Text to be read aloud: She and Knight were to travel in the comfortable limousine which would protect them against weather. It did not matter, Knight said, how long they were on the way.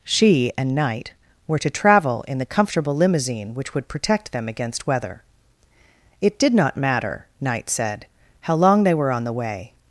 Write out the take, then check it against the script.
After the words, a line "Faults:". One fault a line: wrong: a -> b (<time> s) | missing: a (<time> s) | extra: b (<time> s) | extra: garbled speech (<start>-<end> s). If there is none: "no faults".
She and Knight were to travel in the comfortable limousine which would protect them against weather. It did not matter, Knight said, how long they were on the way.
Faults:
no faults